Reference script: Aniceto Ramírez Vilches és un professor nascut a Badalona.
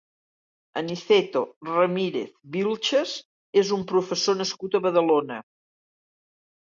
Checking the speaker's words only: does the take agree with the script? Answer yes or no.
yes